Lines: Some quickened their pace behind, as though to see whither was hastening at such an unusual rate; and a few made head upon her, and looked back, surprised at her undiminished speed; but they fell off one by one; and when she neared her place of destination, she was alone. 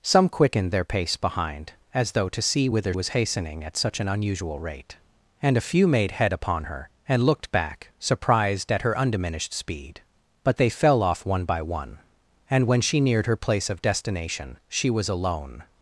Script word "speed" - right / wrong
right